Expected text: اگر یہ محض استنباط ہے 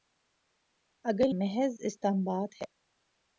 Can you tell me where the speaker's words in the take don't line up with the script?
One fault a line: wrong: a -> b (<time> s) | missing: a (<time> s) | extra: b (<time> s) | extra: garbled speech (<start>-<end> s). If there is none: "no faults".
missing: یہ (1.3 s)